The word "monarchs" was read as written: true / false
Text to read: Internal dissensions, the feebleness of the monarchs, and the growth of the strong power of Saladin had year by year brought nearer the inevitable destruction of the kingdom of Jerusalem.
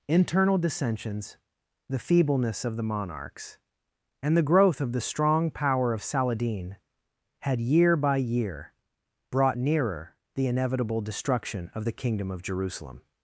true